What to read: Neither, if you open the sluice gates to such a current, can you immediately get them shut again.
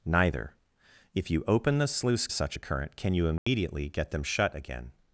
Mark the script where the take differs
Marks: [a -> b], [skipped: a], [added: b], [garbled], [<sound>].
Neither, if you open the sluice [skipped: gates to] such a current, can you immediately [dropout] get them shut again.